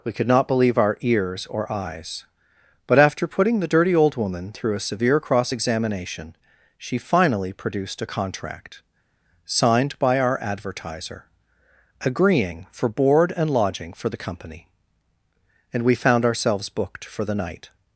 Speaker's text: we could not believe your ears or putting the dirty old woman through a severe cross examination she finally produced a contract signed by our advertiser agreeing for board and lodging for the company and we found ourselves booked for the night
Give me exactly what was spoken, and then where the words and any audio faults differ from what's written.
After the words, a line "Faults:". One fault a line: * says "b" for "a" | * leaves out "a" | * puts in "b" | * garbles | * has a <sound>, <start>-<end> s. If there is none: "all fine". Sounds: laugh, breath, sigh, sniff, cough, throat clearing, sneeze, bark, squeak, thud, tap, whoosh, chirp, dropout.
we could not believe our ears or eyes but after putting the dirty old woman through a severe cross examination she finally produced a contract signed by our advertiser agreeing for board and lodging for the company and we found ourselves booked for the night
Faults:
* says "our" for "your"
* puts in "eyes but after"